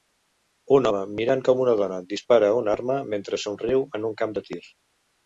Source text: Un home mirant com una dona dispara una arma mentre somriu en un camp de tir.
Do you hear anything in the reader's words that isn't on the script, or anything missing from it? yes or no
no